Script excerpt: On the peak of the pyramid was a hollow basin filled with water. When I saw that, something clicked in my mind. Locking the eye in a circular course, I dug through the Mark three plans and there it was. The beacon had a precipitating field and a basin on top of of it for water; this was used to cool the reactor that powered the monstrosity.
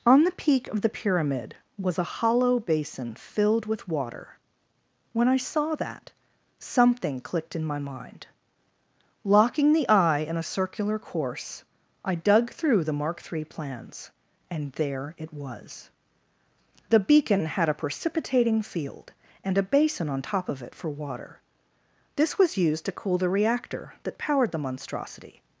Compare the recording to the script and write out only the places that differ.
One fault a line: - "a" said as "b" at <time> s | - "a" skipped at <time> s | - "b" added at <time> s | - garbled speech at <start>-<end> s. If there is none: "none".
- "of" skipped at 20.6 s